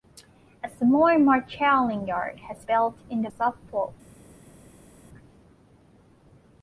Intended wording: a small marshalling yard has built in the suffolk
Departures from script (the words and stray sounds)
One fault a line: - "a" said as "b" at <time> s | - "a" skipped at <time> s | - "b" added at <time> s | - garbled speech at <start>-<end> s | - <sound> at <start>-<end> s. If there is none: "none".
none